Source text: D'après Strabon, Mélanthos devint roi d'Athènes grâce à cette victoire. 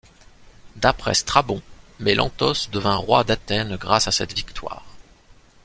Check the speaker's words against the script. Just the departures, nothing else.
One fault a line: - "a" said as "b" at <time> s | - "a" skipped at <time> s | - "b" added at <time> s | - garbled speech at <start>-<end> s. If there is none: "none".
none